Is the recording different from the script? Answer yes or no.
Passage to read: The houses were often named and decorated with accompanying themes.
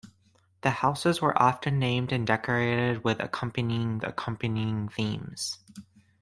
yes